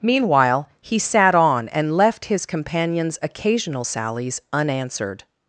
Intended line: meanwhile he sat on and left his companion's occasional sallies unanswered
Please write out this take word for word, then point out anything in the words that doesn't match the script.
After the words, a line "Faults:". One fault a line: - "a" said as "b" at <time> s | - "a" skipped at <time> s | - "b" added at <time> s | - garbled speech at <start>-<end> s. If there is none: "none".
meanwhile he sat on and left his companion's occasional sallies unanswered
Faults:
none